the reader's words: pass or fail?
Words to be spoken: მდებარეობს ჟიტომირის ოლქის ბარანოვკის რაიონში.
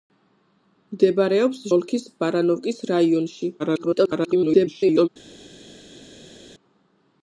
fail